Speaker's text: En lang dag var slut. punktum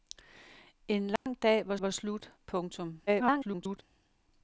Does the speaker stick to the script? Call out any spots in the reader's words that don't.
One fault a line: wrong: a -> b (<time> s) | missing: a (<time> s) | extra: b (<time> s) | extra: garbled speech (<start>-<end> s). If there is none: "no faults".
extra: var (1.8 s)
extra: garbled speech (3.1-3.8 s)